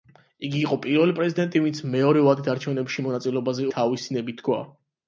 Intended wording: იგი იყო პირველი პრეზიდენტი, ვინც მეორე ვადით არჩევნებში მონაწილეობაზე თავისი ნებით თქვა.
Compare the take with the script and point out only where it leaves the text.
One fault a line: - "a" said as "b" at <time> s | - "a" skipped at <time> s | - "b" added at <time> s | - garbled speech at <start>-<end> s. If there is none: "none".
none